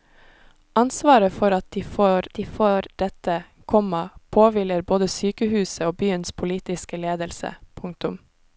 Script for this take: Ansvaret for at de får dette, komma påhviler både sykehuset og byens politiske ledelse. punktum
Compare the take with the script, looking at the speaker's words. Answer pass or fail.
fail